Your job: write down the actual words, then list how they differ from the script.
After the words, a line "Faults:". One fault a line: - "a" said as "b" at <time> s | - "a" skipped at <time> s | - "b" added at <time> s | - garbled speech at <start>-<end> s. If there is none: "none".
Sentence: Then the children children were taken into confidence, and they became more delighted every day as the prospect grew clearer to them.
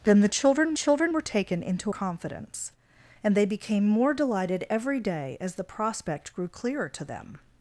Then the children children were taken into confidence, and they became more delighted every day as the prospect grew clearer to them.
Faults:
none